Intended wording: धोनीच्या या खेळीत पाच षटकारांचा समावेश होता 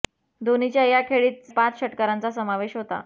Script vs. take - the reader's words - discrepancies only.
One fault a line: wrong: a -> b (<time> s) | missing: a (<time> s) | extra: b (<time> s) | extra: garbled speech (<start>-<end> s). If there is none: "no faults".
no faults